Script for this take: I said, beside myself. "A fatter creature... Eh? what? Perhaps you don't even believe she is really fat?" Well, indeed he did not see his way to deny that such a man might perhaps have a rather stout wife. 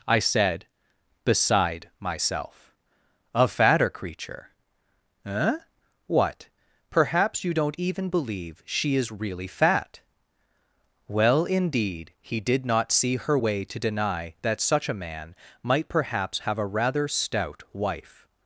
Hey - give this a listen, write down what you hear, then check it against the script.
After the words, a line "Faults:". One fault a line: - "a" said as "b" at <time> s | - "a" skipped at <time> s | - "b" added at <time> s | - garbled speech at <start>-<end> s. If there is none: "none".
I said, beside myself. "A fatter creature... Eh? what? Perhaps you don't even believe she is really fat?" Well, indeed he did not see her way to deny that such a man might perhaps have a rather stout wife.
Faults:
- "his" said as "her" at 13.1 s